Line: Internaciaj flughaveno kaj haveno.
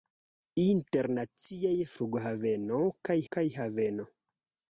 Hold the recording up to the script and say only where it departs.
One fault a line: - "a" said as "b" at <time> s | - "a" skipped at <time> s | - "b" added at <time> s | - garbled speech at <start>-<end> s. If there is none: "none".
- "kaj" added at 3.3 s